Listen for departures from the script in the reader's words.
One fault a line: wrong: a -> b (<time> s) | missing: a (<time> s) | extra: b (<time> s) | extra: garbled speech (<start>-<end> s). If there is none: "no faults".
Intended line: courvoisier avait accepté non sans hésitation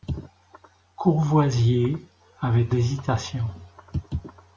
missing: accepté non sans (2.8 s)